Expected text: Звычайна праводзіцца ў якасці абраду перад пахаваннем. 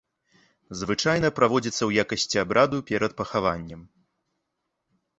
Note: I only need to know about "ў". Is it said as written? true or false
true